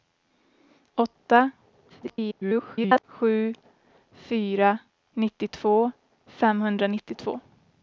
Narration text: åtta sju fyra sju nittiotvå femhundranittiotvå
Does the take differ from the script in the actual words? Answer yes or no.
yes